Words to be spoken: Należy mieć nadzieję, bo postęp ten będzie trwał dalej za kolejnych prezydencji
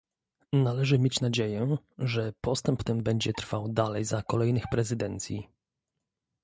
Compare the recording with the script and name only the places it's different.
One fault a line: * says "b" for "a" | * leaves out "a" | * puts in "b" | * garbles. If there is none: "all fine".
* says "że" for "bo"